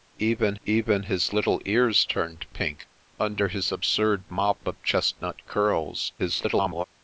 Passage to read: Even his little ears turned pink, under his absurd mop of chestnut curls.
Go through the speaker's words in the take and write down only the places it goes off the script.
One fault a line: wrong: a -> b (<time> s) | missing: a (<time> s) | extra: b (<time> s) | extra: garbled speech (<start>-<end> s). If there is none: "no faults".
extra: even (0.6 s)
extra: garbled speech (6.2-6.8 s)